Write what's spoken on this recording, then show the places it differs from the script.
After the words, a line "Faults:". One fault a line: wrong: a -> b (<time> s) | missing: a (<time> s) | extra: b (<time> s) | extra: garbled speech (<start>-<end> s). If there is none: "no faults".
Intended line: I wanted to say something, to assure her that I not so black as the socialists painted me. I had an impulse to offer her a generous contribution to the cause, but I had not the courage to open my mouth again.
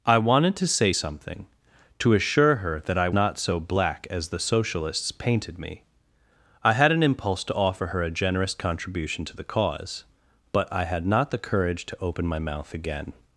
I wanted to say something, to assure her that I not so black as the socialists painted me. I had an impulse to offer her a generous contribution to the cause, but I had not the courage to open my mouth again.
Faults:
no faults